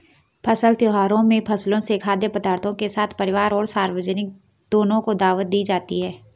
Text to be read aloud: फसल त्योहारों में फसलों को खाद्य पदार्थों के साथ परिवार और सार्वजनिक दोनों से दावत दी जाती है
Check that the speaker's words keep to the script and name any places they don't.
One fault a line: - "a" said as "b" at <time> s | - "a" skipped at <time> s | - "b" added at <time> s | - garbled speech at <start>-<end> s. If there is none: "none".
- "को" said as "से" at 1.8 s
- "से" said as "को" at 5.0 s